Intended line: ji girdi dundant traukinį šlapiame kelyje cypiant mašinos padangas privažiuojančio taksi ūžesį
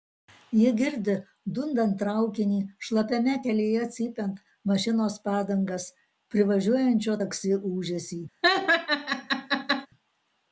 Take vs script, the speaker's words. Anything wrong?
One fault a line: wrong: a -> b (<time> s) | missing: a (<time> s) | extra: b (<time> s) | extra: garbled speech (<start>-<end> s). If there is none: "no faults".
no faults